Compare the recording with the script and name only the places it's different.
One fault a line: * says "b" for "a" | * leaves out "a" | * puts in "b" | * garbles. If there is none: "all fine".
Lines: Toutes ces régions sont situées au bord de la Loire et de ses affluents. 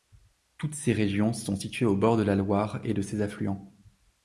all fine